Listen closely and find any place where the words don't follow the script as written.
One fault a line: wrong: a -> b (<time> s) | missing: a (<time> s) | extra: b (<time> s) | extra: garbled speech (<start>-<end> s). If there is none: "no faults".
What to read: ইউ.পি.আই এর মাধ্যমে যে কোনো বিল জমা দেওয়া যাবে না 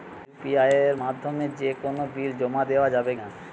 no faults